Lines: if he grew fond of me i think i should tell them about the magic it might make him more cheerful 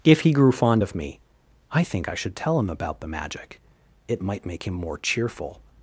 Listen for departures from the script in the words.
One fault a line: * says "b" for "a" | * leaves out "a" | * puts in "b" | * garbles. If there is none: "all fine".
* says "him" for "them"